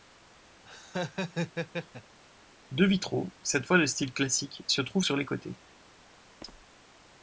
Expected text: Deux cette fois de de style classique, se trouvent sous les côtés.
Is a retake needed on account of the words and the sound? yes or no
yes